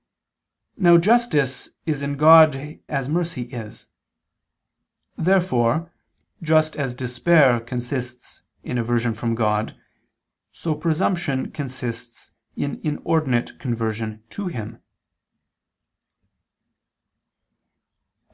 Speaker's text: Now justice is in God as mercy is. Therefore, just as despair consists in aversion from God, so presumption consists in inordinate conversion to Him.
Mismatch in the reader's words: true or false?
false